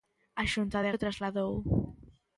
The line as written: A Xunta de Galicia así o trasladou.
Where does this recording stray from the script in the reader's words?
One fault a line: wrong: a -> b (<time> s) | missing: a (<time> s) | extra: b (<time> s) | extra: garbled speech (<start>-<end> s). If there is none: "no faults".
missing: Galicia así (0.9 s)